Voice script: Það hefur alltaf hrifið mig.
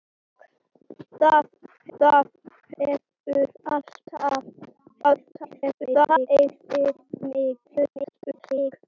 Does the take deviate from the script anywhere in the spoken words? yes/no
yes